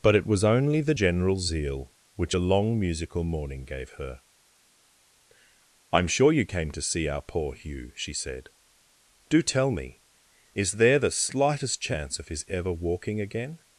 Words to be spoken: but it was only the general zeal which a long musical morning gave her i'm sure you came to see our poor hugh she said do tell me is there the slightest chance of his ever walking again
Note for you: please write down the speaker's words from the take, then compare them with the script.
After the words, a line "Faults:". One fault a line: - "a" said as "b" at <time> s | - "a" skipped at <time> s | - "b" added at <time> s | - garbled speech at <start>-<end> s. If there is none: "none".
but it was only the general zeal which a long musical morning gave her i'm sure you came to see our poor hugh she said do tell me is there the slightest chance of his ever walking again
Faults:
none